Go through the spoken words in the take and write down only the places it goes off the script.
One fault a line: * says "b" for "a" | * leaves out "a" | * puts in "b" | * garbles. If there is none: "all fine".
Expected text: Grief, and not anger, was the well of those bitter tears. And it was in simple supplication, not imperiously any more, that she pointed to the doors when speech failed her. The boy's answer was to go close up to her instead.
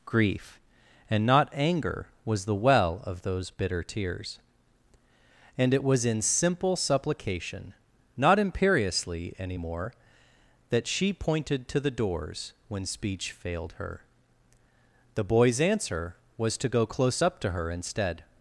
all fine